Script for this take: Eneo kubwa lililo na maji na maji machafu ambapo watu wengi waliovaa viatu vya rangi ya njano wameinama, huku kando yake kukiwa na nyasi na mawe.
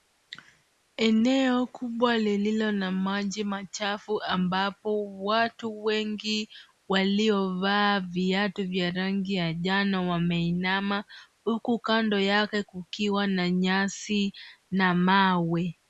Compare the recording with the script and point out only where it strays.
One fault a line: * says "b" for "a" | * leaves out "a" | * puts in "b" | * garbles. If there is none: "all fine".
* leaves out "na maji"